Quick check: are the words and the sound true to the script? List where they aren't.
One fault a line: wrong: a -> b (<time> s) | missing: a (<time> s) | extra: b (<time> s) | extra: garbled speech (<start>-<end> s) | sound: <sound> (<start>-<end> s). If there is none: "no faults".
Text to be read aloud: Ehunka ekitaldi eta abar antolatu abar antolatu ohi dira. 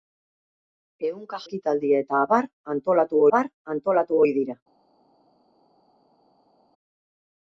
no faults